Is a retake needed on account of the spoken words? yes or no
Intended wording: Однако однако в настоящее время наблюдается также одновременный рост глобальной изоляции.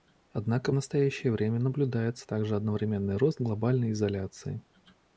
yes